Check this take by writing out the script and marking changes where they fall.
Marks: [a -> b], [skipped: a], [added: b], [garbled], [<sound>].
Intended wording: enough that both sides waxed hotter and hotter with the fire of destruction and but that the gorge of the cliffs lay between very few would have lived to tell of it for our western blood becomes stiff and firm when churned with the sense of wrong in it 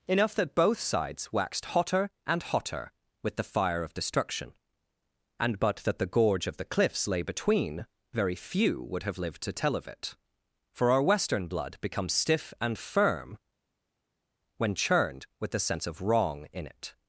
enough that both sides waxed hotter and hotter with the fire of destruction and but that the gorge of the cliffs lay between very few would have lived to tell of it for our western blood becomes stiff and firm when churned with the sense of wrong in it